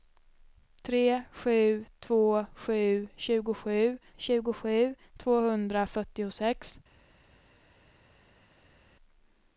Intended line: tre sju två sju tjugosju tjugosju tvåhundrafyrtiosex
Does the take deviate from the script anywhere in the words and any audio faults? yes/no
no